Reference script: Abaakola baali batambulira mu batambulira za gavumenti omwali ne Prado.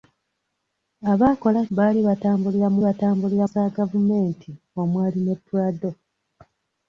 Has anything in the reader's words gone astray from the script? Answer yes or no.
no